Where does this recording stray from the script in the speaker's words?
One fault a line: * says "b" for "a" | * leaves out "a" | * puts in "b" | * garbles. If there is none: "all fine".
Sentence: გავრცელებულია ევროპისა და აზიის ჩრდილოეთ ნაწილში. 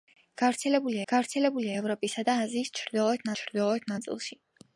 * puts in "გავრცელებულია"
* puts in "ჩრდილოეთ"